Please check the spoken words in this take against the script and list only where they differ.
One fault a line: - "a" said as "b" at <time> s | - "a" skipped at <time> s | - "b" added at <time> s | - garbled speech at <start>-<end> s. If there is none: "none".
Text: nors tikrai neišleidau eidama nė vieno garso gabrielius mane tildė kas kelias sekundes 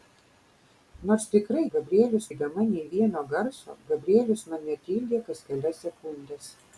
- "neišleidau" said as "gabrielius" at 1.7 s